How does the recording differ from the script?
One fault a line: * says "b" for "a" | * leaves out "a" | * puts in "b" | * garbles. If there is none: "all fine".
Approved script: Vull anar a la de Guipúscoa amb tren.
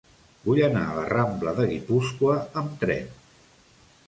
* puts in "rambla"